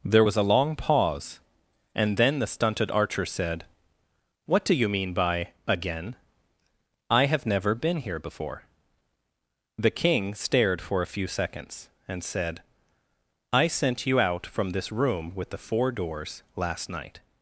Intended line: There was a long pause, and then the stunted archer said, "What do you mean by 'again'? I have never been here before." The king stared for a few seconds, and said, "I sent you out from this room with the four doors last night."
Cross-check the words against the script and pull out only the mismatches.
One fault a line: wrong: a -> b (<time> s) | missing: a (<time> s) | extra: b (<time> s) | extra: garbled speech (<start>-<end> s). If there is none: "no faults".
no faults